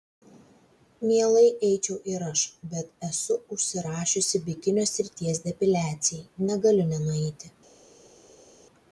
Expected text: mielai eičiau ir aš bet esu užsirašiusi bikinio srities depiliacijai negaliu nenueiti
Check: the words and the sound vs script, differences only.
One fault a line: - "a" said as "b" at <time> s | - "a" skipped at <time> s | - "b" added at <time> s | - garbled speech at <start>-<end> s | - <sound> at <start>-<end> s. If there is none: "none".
none